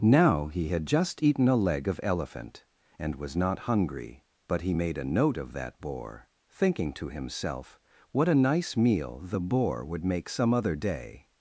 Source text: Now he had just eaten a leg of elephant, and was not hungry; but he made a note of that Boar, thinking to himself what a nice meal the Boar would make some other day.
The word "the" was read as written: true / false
true